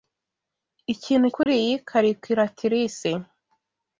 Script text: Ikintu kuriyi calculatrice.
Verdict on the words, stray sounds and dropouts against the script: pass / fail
fail